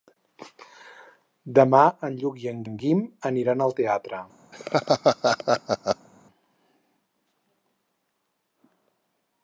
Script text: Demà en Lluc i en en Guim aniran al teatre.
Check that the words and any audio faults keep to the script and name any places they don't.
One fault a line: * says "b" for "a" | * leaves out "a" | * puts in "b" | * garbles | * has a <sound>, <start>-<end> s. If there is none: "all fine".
* has a laugh, 4.5-6.1 s